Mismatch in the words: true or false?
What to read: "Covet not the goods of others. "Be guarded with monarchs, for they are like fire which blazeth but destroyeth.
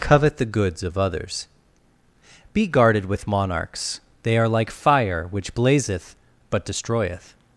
true